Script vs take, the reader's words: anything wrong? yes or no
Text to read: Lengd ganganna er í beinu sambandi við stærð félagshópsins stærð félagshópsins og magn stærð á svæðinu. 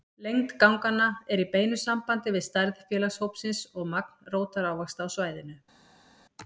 yes